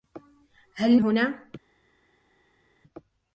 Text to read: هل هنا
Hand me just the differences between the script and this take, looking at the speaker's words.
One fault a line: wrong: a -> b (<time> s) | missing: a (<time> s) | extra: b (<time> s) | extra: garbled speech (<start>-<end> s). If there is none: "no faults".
no faults